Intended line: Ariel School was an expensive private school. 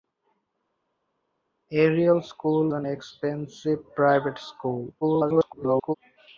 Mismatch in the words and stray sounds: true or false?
true